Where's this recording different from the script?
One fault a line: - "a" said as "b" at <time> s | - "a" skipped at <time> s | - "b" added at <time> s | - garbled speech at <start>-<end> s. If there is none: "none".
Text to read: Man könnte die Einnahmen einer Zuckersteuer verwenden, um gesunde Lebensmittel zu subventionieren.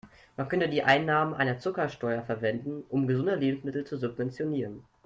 none